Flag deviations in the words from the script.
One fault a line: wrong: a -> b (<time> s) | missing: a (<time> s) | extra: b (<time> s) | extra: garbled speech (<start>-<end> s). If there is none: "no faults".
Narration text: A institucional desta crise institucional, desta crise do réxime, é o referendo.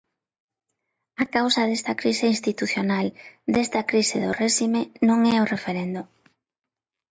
wrong: institucional -> causa (1.4 s)
extra: non (5.1 s)